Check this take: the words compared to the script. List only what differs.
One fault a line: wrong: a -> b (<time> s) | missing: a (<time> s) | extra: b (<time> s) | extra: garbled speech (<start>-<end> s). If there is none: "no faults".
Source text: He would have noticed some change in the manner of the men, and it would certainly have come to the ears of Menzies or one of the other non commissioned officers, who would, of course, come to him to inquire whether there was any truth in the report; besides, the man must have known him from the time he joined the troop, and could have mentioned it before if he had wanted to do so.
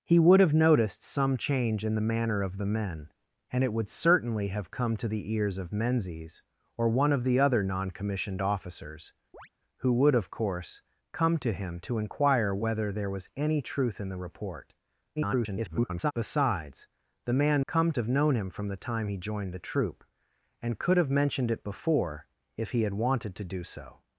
extra: garbled speech (15.2-16.1 s)
wrong: must -> come (17.7 s)